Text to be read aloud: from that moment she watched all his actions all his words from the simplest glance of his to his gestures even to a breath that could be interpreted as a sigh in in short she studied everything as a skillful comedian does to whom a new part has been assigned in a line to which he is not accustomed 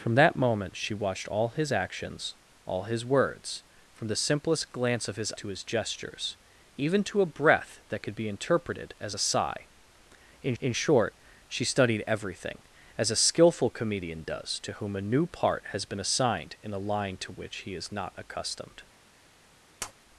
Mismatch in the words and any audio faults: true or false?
true